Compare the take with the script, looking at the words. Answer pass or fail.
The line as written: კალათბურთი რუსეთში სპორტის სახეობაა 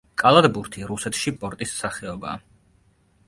pass